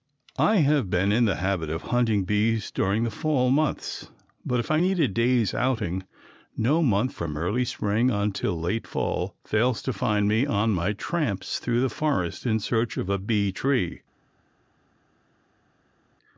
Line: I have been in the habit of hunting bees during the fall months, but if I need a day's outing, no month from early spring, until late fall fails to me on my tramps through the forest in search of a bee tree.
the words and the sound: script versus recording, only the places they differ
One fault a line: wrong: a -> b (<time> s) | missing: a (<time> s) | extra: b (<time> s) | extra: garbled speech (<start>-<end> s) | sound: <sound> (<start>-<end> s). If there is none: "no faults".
extra: find (9.9 s)